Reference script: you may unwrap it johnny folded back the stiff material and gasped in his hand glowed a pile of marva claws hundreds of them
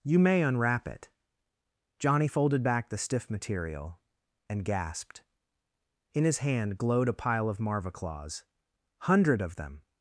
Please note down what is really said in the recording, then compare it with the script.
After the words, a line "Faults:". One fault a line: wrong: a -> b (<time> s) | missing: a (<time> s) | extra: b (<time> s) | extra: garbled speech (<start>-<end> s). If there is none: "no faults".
you may unwrap it johnny folded back the stiff material and gasped in his hand glowed a pile of marva claws hundred of them
Faults:
wrong: hundreds -> hundred (9.0 s)